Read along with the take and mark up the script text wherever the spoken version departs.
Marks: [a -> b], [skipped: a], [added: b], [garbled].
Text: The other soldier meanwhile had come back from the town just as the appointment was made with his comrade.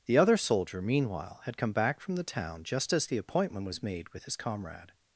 The other soldier meanwhile had come back from the town just as the appointment was made with his comrade.